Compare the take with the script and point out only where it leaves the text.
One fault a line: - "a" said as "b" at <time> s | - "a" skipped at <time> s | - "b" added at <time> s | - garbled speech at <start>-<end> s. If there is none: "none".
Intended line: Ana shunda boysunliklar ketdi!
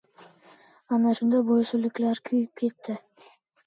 - "kuyib" added at 2.3 s